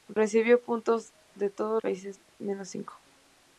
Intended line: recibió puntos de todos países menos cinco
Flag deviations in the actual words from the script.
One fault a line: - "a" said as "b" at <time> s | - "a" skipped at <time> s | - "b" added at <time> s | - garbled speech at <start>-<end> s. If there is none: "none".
none